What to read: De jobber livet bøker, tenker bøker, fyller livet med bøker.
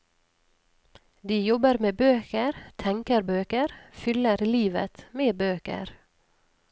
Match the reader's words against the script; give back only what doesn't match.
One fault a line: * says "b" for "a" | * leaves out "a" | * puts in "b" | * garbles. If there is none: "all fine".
* says "med" for "livet"